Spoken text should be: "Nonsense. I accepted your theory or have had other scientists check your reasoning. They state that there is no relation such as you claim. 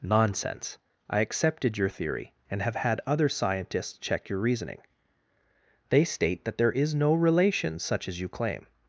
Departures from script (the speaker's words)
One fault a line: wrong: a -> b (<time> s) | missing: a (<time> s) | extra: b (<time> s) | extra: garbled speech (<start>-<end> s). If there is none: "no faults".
wrong: or -> and (2.5 s)